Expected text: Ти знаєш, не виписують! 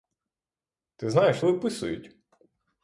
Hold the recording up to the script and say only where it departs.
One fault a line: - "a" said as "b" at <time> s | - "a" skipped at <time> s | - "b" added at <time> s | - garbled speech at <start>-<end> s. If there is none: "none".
- "не" skipped at 1.4 s